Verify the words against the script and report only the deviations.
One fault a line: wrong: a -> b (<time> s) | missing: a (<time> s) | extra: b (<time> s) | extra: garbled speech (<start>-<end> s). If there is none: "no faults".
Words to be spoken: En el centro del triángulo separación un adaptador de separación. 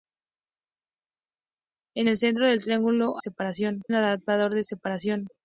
no faults